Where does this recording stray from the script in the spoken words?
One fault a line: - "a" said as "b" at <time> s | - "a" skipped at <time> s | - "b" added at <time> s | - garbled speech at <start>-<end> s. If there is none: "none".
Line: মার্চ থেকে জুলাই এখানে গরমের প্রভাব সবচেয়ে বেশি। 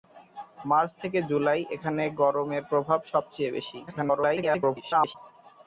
- garbled speech at 3.9-5.1 s